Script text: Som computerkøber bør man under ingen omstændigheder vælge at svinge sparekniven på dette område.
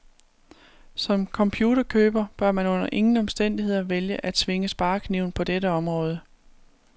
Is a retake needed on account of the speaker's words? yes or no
no